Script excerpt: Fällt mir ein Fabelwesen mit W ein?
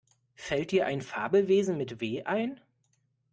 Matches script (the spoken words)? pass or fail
fail